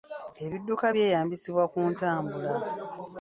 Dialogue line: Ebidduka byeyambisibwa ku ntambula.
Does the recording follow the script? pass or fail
pass